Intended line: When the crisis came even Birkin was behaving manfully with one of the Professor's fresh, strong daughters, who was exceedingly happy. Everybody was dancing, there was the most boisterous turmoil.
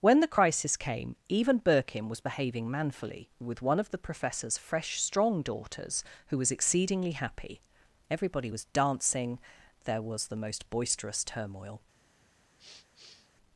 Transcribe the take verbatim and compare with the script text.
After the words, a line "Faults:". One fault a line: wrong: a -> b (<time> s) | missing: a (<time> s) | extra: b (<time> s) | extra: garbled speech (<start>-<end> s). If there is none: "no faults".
When the crisis came even Birkin was behaving manfully with one of the Professor's fresh, strong daughters, who was exceedingly happy. Everybody was dancing, there was the most boisterous turmoil.
Faults:
no faults